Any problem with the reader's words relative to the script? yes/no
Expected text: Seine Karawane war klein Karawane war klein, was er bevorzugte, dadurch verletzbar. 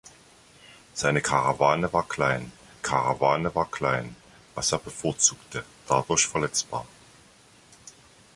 no